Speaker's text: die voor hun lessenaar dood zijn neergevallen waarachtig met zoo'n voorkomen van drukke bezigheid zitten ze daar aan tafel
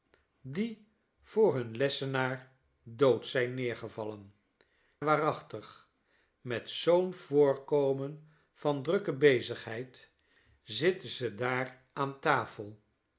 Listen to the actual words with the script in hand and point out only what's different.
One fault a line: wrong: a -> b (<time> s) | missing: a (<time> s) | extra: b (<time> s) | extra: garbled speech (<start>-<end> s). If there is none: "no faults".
no faults